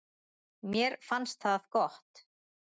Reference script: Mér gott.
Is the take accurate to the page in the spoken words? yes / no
no